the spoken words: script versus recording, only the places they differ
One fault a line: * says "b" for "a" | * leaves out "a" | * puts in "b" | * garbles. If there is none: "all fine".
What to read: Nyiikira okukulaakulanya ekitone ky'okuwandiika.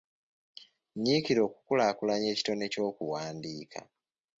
all fine